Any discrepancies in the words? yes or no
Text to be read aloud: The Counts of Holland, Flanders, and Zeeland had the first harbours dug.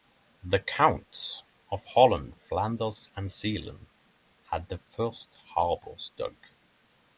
no